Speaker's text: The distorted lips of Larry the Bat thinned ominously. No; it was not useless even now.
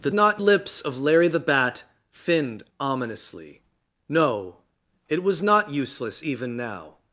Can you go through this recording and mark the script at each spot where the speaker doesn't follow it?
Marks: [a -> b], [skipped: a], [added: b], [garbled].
The [distorted -> not] lips of Larry the Bat thinned ominously. No; it was not useless even now.